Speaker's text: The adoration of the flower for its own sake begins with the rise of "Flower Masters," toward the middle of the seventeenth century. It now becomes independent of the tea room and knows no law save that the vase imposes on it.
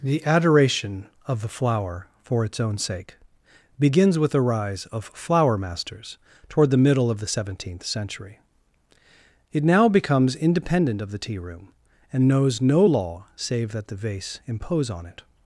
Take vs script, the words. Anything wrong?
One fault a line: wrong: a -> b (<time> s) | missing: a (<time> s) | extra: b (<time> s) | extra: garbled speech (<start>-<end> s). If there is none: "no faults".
wrong: imposes -> impose (14.5 s)